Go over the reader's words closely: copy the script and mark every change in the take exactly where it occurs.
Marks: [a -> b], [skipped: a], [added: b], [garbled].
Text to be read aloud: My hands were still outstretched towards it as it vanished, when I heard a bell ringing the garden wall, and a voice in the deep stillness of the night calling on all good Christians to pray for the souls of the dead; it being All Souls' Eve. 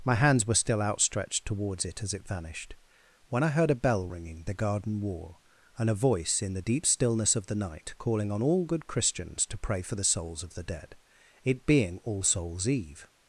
My hands were still outstretched towards it as it vanished, when I heard a bell ringing the garden wall, and a voice in the deep stillness of the night calling on all good Christians to pray for the souls of the dead; it being All Souls' Eve.